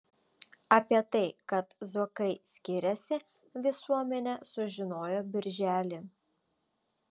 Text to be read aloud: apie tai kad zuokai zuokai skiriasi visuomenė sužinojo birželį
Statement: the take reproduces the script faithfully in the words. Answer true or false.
false